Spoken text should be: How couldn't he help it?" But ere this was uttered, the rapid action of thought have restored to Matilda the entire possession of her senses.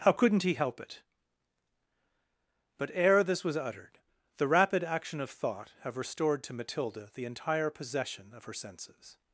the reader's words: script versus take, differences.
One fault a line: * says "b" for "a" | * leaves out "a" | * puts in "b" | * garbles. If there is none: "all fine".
all fine